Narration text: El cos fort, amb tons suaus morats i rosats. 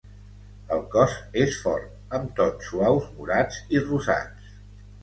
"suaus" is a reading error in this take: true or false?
false